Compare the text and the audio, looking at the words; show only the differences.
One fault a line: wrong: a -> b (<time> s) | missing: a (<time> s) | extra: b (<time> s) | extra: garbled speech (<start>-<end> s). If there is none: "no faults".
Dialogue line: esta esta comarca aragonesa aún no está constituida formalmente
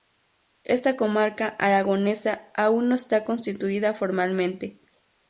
missing: esta (1.0 s)